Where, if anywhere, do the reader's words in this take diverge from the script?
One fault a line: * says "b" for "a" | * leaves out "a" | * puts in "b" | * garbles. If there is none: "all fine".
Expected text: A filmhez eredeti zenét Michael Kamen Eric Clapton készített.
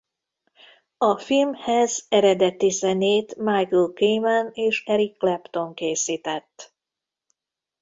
* puts in "és"